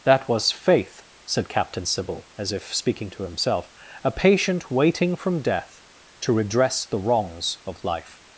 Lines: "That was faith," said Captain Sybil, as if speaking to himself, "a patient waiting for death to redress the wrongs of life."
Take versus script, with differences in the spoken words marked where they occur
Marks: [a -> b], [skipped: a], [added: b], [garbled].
"That was faith," said Captain Sybil, as if speaking to himself, "a patient waiting [for -> from] death to redress the wrongs of life."